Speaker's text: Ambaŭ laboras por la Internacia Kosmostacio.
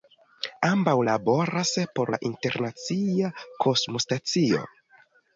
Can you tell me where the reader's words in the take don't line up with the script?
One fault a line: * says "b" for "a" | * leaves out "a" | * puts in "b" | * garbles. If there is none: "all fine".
all fine